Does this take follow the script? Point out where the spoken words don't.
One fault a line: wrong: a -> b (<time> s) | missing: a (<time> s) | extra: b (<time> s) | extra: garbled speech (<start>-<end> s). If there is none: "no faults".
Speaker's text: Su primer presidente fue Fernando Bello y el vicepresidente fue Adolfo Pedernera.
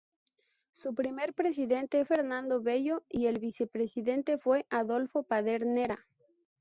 missing: fue (2.0 s)